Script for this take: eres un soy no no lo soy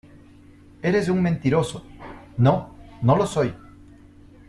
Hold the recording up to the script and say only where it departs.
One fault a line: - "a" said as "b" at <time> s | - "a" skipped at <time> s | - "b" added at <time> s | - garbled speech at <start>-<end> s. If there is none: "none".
- "soy" said as "mentiroso" at 1.2 s